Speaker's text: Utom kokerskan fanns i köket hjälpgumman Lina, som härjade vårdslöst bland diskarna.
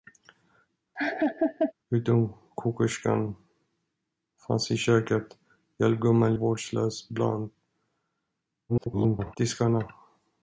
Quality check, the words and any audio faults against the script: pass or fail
fail